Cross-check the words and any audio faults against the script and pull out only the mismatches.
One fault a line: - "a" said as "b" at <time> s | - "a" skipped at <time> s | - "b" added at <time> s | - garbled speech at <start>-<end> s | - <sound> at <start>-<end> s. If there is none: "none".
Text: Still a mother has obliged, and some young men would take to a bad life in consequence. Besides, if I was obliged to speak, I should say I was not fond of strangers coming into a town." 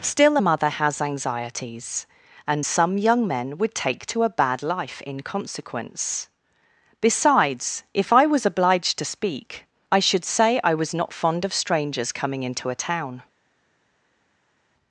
- "obliged" said as "anxieties" at 1.0 s